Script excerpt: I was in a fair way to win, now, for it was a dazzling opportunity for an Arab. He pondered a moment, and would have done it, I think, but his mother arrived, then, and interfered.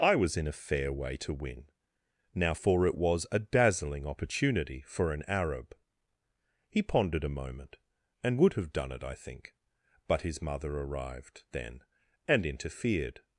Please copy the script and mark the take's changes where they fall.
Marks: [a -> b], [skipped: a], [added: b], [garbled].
I was in a fair way to win, now, for it was a dazzling opportunity for an Arab. He pondered a moment, and would have done it, I think, but his mother arrived, then, and interfered.